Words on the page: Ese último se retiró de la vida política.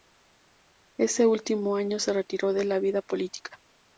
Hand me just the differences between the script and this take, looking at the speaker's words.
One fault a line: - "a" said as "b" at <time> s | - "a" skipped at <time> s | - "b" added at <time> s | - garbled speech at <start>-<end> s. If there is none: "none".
- "año" added at 1.8 s